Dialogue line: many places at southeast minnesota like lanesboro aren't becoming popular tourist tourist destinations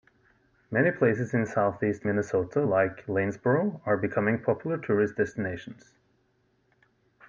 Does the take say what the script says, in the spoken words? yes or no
no